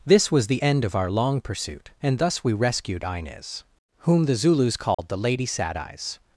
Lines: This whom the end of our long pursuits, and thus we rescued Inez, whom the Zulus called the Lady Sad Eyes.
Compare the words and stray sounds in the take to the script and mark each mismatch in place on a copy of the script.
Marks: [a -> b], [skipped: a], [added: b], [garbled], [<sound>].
This [whom -> was] the end of our long [pursuits, -> pursuit] and thus we rescued Inez, whom the Zulus called [dropout] the Lady Sad Eyes.